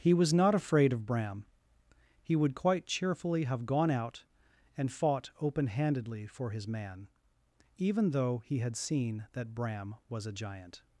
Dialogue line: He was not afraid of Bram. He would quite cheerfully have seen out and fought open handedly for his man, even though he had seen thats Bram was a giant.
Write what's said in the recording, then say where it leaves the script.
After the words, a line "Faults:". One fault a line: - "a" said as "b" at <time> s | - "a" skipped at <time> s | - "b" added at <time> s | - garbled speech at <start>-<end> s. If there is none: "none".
He was not afraid of Bram. He would quite cheerfully have gone out and fought open handedly for his man, even though he had seen that Bram was a giant.
Faults:
- "seen" said as "gone" at 3.7 s
- "thats" said as "that" at 9.3 s